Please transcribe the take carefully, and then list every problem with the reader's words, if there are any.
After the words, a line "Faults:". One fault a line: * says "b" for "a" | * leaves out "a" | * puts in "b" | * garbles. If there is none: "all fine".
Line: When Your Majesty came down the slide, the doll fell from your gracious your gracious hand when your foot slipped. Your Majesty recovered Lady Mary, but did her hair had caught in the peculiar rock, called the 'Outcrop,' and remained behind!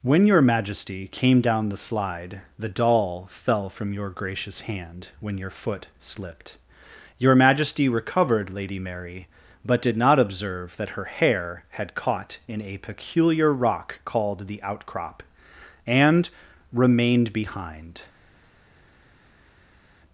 When Your Majesty came down the slide, the doll fell from your gracious hand when your foot slipped. Your Majesty recovered Lady Mary, but did not observe that her hair had caught in a peculiar rock, called the 'Outcrop,' and remained behind!
Faults:
* leaves out "your gracious"
* puts in "not observe that"
* says "a" for "the"